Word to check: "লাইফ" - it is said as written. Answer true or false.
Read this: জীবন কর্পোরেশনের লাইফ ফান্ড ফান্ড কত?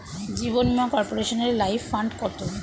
true